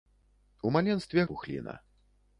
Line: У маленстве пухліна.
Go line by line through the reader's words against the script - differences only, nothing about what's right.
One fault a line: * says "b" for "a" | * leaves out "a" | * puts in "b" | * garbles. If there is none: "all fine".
all fine